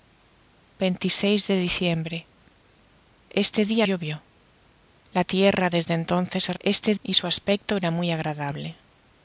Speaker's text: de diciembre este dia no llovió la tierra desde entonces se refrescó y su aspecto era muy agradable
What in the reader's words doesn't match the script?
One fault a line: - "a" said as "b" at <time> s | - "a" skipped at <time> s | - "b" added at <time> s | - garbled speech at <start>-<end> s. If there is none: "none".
- "no" skipped at 3.9 s
- "refrescó" said as "este" at 6.6 s